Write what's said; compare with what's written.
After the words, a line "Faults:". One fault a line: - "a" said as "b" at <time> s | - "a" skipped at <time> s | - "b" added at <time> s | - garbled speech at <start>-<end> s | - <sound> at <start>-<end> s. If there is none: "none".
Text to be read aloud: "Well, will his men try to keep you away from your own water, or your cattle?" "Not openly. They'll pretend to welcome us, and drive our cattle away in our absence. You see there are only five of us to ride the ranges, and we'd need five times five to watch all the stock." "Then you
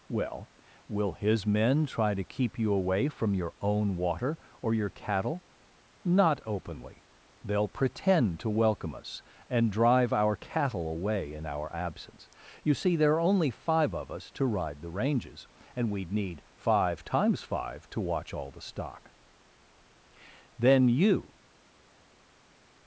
"Well, will his men try to keep you away from your own water, or your cattle?" "Not openly. They'll pretend to welcome us, and drive our cattle away in our absence. You see there are only five of us to ride the ranges, and we'd need five times five to watch all the stock." "Then you
Faults:
none